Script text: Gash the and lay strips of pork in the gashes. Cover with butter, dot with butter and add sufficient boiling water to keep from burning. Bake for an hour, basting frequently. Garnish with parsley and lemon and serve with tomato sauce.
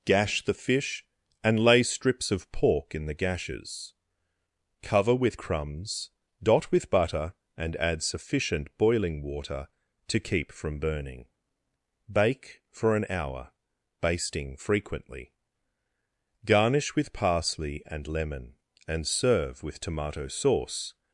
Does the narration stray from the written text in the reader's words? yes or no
yes